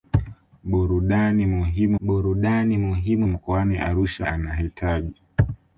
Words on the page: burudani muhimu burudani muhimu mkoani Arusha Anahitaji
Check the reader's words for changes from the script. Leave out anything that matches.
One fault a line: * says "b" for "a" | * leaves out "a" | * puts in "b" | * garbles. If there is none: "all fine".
all fine